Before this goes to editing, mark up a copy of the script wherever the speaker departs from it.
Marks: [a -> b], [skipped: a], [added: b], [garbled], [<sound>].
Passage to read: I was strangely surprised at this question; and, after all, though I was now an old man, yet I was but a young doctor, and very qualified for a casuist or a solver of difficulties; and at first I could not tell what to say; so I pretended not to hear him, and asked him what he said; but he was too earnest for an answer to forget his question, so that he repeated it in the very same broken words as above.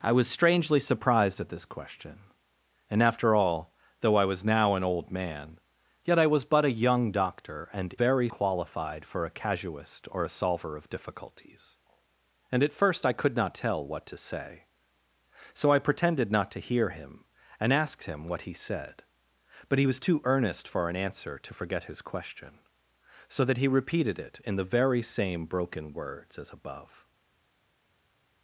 I was strangely surprised at this question; and, after all, though I was now an old man, yet I was but a young doctor, and very qualified for a casuist or a solver of difficulties; and at first I could not tell what to say; so I pretended not to hear him, and asked him what he said; but he was too earnest for an answer to forget his question, so that he repeated it in the very same broken words as above.